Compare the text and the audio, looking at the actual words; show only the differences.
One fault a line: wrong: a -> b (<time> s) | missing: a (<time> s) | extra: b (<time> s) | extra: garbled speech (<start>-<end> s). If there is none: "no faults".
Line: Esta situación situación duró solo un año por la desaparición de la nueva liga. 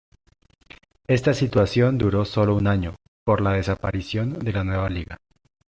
missing: situación (2.0 s)